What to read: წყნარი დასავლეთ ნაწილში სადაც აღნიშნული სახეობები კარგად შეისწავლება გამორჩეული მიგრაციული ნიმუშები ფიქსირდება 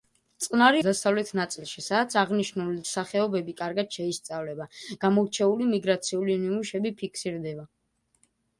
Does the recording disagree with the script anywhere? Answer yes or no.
no